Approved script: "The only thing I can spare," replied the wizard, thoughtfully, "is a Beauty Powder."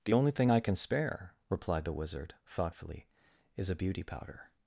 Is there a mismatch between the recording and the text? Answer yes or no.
no